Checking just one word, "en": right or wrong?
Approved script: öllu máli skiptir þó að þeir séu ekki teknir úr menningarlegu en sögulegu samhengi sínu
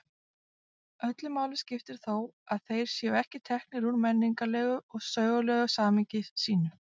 wrong